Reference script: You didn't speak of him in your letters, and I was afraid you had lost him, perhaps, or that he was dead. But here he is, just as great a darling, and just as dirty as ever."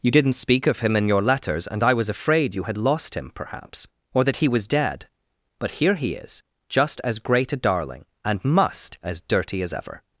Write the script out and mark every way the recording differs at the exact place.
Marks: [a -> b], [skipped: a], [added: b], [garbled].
You didn't speak of him in your letters, and I was afraid you had lost him, perhaps, or that he was dead. But here he is, just as great a darling, and [just -> must] as dirty as ever."